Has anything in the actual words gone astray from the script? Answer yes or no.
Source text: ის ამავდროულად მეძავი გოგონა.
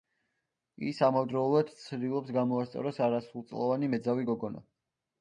yes